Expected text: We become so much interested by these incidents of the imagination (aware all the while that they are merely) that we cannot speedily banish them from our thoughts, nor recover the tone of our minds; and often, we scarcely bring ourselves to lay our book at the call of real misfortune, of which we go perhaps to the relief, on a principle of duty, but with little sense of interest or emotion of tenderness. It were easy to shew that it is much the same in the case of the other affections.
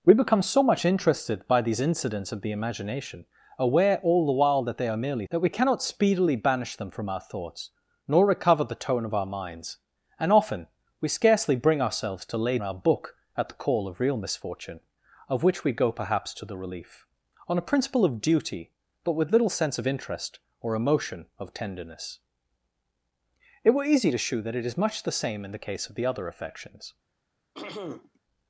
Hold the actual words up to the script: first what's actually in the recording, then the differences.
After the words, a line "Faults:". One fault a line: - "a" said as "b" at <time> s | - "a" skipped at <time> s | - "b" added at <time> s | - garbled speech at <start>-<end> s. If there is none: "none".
We become so much interested by these incidents of the imagination (aware all the while that they are merely) that we cannot speedily banish them from our thoughts, nor recover the tone of our minds; and often, we scarcely bring ourselves to lay our book at the call of real misfortune, of which we go perhaps to the relief, on a principle of duty, but with little sense of interest or emotion of tenderness. It were easy to shew that it is much the same in the case of the other affections.
Faults:
none